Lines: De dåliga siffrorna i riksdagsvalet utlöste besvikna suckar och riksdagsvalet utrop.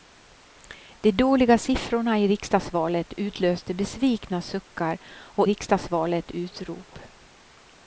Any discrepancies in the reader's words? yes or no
no